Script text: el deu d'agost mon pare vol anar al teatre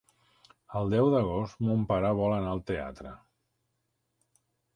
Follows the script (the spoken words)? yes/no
yes